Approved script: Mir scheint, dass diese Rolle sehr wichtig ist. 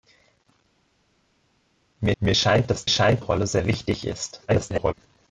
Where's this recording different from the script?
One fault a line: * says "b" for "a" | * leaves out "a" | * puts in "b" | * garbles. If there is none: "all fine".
* puts in "mir"
* says "scheint" for "diese"
* garbles